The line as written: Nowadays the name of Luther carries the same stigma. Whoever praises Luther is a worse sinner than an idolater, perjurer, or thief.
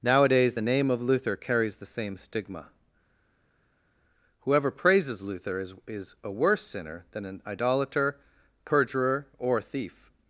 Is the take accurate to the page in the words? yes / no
no